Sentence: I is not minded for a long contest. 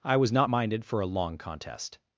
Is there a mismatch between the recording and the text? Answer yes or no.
yes